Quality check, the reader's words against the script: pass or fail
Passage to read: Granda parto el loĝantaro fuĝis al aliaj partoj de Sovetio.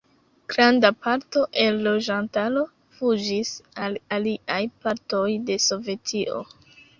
pass